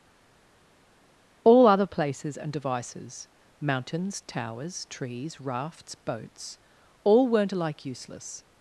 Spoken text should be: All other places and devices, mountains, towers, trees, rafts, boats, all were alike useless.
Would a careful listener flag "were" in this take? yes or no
yes